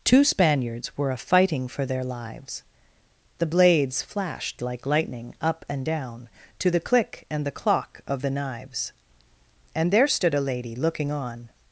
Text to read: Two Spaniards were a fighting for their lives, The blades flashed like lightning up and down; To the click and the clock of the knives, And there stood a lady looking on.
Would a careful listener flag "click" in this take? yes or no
no